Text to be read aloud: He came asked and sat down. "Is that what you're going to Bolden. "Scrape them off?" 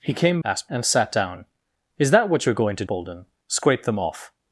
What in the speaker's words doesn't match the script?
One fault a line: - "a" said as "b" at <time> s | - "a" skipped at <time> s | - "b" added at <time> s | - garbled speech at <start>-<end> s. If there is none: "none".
none